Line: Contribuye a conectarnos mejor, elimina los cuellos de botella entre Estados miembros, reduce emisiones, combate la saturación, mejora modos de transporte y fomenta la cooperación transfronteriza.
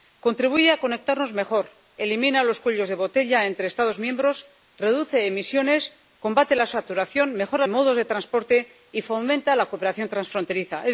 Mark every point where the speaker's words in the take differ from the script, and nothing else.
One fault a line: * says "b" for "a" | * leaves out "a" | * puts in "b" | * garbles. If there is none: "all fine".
all fine